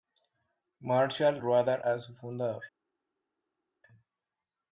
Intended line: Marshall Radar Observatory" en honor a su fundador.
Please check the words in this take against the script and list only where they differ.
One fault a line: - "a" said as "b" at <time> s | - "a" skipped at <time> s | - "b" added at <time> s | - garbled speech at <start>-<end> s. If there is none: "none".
- "Observatory en honor" skipped at 1.8 s